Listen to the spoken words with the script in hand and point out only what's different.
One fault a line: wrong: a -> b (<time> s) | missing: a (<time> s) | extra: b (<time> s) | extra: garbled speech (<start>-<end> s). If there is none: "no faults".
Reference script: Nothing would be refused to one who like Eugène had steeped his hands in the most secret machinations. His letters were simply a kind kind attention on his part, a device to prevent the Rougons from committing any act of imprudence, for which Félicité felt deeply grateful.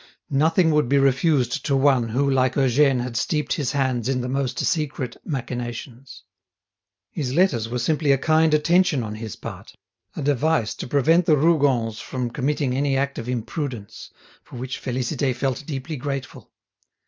missing: kind (8.5 s)